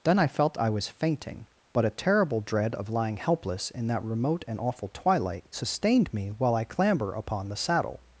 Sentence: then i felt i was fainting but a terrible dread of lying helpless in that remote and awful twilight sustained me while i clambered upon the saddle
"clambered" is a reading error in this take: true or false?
true